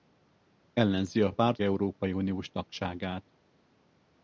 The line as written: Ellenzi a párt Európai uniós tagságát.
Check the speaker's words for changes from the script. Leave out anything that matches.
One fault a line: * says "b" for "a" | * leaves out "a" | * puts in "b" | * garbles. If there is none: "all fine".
all fine